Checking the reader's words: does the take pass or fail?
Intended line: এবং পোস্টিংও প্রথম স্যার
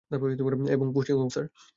fail